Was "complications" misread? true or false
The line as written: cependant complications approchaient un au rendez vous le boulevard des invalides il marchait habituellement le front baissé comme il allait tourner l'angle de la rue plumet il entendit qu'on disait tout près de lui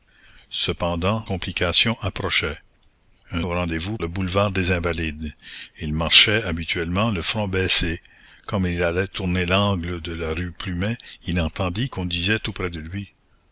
false